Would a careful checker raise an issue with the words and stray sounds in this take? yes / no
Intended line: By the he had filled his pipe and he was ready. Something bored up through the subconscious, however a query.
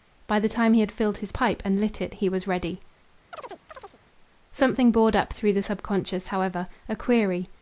yes